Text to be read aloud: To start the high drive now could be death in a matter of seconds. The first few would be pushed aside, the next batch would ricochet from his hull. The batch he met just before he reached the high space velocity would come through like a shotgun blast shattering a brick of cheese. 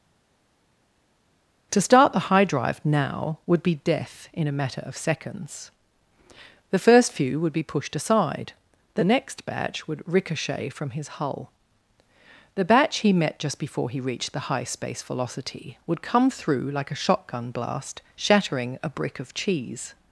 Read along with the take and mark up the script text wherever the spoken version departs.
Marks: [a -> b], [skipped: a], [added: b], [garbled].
To start the high drive now [could -> would] be death in a matter of seconds. The first few would be pushed aside, the next batch would ricochet from his hull. The batch he met just before he reached the high space velocity would come through like a shotgun blast shattering a brick of cheese.